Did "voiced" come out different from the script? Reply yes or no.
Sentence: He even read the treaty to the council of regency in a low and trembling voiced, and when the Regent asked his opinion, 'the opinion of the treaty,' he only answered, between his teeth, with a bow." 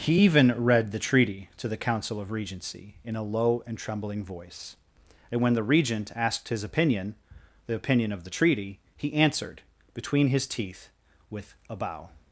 yes